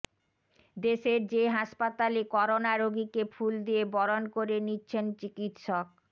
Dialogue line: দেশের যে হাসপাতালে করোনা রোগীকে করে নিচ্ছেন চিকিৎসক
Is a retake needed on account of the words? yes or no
yes